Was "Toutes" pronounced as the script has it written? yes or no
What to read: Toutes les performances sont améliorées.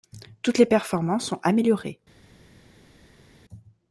yes